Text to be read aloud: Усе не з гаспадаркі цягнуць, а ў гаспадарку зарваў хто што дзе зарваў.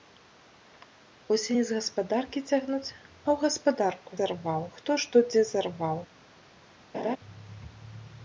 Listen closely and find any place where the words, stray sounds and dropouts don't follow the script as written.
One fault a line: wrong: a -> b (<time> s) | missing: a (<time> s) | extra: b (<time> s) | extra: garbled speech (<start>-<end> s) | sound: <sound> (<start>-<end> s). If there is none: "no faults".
sound: laugh (6.9-7.2 s)